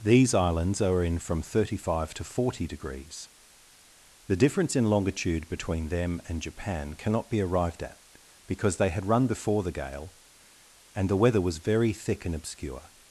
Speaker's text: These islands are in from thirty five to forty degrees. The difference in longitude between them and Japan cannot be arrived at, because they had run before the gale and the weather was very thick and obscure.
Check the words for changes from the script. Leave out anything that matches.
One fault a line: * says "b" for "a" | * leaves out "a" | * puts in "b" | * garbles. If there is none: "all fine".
all fine